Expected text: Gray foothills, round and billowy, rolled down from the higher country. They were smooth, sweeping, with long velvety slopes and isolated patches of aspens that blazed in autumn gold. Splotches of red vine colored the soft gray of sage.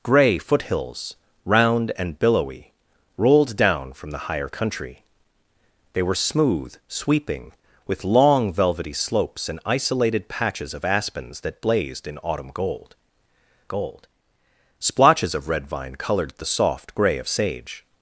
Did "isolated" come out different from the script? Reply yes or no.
no